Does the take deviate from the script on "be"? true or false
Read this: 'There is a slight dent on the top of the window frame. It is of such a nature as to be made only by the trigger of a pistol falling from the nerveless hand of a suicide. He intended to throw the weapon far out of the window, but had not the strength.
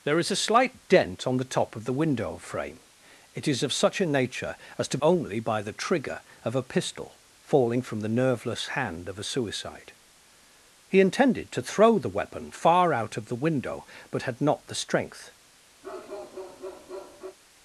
true